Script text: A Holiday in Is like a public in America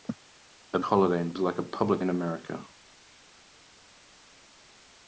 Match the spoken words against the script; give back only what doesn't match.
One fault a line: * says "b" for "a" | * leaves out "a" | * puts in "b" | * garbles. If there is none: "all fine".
all fine